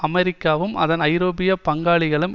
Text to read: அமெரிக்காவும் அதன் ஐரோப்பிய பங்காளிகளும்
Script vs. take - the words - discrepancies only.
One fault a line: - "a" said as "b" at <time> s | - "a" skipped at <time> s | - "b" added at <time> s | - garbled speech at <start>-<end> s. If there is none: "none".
none